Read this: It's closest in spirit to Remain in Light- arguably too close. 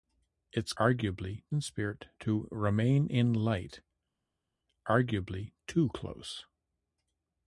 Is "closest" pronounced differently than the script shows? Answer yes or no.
yes